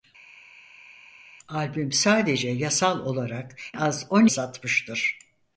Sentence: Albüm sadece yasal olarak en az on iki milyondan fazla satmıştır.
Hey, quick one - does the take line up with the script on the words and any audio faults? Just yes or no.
no